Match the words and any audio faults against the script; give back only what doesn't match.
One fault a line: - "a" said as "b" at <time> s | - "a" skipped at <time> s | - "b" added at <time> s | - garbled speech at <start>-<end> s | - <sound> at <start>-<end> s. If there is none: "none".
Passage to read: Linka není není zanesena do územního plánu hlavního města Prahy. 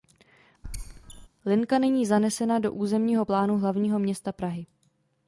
- squeak at 0.6-1.3 s
- "není" skipped at 2.1 s